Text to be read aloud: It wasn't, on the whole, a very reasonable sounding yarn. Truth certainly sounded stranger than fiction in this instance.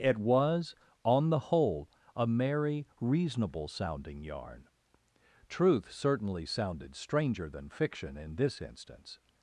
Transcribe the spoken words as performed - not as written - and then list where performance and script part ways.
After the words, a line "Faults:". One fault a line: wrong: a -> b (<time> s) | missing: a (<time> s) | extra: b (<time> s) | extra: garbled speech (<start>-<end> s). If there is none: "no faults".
It was, on the whole, a merry reasonable sounding yarn. Truth certainly sounded stranger than fiction in this instance.
Faults:
wrong: wasn't -> was (0.2 s)
wrong: very -> merry (2.2 s)